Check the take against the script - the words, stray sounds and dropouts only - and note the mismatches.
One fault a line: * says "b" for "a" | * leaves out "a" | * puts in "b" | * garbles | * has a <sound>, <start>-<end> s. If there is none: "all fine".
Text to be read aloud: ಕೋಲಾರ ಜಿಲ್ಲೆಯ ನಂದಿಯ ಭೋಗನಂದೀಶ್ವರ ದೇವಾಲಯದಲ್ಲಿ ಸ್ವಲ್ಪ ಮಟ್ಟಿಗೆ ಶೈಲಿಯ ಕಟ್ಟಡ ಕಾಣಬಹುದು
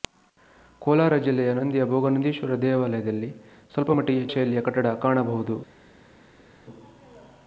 all fine